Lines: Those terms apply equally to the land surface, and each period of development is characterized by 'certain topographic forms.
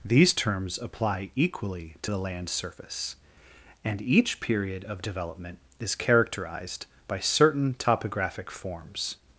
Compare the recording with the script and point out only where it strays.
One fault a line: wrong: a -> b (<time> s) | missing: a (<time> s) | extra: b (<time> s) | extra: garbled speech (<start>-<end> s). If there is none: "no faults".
wrong: Those -> These (0.0 s)